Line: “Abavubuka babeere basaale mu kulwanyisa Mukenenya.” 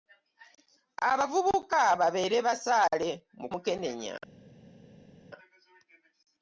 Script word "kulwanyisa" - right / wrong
wrong